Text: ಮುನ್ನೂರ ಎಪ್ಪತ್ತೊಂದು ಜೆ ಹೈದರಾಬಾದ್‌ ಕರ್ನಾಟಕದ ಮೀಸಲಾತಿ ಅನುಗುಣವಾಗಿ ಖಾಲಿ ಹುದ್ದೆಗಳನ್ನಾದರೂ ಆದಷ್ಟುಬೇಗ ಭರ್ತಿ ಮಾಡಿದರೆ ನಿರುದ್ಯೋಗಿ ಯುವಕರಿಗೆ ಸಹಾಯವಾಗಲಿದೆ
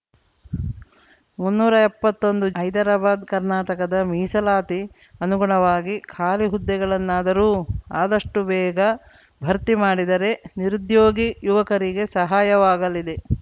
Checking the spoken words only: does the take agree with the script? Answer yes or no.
no